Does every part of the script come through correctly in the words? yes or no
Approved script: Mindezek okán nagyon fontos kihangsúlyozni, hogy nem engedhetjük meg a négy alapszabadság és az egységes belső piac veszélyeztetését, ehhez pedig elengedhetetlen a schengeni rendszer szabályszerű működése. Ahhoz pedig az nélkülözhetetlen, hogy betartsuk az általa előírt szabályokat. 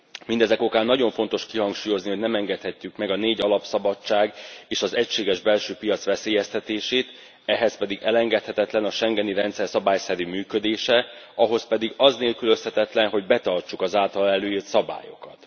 yes